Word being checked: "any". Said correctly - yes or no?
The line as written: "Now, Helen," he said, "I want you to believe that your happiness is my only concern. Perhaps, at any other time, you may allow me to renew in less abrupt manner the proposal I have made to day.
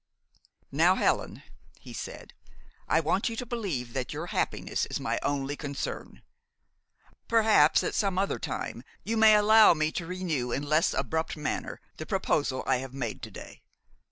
no